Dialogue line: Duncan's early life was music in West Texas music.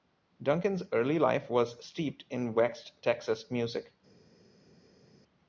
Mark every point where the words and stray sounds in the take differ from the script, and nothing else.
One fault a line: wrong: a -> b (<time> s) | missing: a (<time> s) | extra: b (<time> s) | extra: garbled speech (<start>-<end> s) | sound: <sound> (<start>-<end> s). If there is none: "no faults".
wrong: music -> steeped (1.8 s)